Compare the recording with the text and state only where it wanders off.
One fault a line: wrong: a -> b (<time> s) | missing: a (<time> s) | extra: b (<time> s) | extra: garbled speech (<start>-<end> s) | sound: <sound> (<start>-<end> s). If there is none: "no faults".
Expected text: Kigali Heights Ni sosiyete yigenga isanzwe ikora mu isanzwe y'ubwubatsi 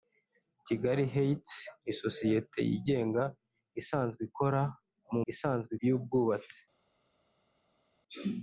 no faults